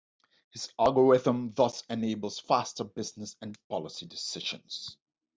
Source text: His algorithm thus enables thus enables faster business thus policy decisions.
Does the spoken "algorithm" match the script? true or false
true